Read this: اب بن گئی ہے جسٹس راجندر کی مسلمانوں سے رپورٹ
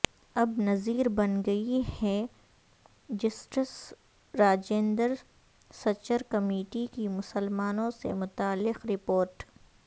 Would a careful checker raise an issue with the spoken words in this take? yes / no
yes